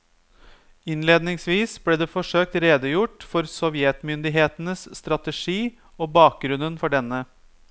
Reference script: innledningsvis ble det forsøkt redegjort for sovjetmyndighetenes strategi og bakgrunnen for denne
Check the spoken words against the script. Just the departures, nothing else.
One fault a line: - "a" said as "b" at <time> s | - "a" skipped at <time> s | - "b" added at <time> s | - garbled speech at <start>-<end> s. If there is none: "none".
none